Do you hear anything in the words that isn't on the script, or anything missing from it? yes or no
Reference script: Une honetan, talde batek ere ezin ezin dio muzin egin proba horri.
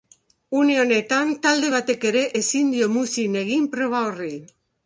yes